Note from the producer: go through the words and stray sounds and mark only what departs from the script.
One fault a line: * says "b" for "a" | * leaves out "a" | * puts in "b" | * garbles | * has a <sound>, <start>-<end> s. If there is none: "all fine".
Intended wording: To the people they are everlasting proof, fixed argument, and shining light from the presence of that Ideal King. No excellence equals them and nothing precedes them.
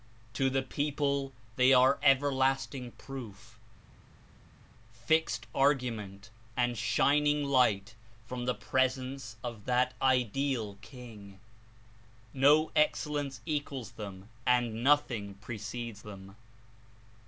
all fine